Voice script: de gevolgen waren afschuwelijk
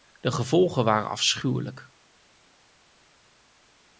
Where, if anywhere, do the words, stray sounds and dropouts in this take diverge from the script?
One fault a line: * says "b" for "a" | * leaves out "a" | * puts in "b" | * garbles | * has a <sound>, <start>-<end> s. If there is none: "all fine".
all fine